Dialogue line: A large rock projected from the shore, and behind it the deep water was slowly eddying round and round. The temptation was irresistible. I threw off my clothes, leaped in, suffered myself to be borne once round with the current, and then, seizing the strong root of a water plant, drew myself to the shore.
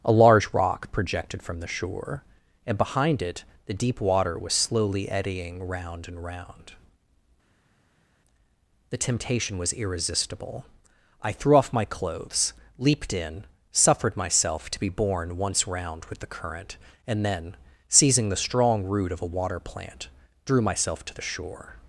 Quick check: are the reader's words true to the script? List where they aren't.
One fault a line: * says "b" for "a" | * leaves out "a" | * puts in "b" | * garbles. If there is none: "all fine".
all fine